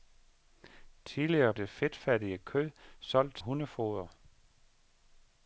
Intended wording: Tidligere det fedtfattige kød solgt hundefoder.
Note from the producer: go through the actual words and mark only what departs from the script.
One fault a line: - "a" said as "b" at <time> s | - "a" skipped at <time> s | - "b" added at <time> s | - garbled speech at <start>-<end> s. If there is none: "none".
none